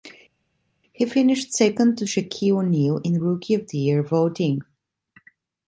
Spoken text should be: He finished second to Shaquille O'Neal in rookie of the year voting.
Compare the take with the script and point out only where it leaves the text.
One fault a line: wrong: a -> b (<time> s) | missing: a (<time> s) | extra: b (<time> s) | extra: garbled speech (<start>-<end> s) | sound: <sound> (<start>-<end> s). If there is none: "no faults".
no faults